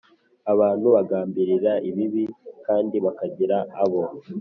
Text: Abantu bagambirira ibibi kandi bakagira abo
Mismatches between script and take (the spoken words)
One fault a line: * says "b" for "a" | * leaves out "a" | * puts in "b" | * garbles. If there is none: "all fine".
all fine